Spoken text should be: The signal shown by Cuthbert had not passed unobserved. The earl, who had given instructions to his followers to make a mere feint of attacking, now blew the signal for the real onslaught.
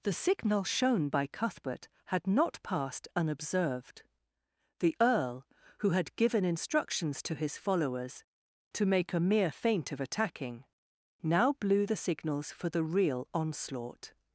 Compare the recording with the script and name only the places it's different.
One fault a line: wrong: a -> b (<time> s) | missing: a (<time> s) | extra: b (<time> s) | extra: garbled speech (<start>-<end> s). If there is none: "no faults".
wrong: signal -> signals (12.0 s)